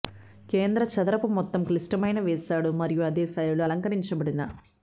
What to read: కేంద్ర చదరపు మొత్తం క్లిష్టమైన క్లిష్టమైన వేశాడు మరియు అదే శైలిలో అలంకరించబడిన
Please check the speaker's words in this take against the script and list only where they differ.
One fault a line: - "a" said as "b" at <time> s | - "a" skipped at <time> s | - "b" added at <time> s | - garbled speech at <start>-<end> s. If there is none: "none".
- "క్లిష్టమైన" skipped at 2.2 s